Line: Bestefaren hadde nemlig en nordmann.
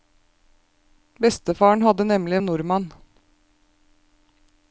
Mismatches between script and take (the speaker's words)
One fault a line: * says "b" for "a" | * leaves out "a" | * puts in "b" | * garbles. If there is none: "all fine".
all fine